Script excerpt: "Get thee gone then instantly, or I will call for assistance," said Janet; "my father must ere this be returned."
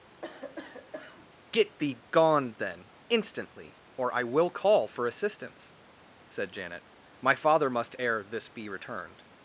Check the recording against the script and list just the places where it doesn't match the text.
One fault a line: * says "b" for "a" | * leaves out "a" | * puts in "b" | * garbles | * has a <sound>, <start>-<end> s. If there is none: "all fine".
* has a cough, 0.2-1.3 s